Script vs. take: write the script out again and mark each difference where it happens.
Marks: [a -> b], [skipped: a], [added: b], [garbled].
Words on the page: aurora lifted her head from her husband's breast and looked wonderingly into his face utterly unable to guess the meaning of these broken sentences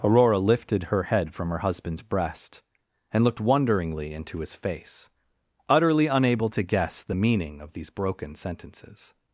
aurora lifted her head from her husband's breast and looked wonderingly into his face utterly unable to guess the meaning of these broken sentences